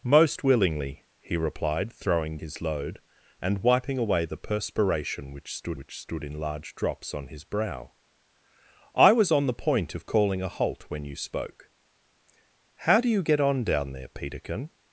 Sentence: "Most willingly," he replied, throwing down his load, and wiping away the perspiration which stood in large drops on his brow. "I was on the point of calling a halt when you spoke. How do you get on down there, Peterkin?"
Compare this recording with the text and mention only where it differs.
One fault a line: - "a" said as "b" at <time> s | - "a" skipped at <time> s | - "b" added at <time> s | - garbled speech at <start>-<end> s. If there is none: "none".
- "down" skipped at 2.4 s
- "which stood" added at 5.8 s